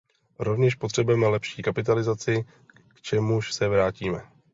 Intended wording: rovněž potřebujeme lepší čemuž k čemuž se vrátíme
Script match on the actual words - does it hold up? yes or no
no